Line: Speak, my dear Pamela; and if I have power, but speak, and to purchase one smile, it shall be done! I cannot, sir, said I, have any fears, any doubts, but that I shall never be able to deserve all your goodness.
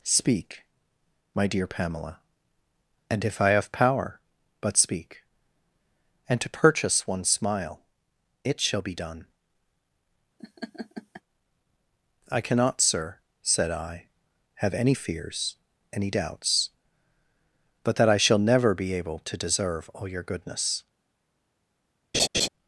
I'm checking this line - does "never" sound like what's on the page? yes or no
yes